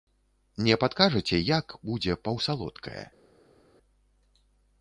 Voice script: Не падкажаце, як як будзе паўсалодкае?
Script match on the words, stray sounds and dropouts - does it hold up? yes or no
no